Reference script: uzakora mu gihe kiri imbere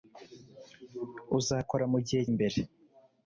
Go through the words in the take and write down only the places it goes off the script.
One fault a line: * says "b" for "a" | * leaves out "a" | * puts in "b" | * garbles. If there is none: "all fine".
* leaves out "kiri"